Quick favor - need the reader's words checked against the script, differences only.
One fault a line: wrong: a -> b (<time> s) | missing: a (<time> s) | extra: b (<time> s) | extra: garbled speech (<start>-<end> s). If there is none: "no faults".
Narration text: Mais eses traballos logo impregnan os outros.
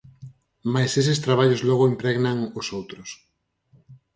no faults